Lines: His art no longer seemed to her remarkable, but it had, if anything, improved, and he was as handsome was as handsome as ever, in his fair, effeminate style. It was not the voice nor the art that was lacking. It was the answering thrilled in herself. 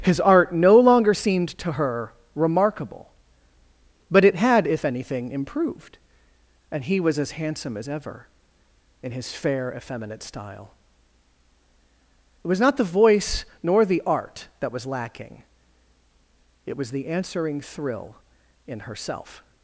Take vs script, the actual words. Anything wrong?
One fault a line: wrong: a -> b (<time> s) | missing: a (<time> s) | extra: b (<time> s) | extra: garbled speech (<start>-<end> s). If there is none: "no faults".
missing: was (7.8 s)
missing: handsome as (7.9 s)
wrong: thrilled -> thrill (17.6 s)